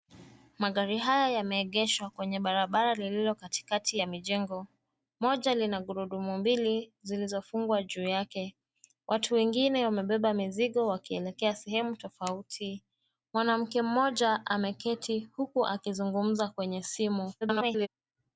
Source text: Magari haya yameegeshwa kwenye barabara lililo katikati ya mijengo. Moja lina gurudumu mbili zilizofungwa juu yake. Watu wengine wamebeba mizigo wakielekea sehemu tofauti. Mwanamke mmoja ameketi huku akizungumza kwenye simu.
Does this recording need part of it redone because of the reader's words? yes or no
yes